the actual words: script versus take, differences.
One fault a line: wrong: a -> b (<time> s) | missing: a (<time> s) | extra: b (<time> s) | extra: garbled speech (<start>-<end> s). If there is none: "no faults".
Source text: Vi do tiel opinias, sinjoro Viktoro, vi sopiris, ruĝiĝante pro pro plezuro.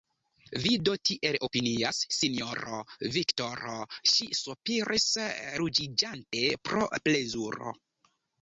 wrong: vi -> ŝi (4.2 s)
missing: pro (6.9 s)